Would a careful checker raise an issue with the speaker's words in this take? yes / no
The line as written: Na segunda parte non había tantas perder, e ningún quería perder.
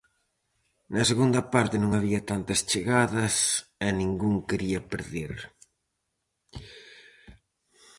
yes